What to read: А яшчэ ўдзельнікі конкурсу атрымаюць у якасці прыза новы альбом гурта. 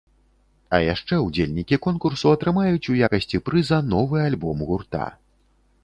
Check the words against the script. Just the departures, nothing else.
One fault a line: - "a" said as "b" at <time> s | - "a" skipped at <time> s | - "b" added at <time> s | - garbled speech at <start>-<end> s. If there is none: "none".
none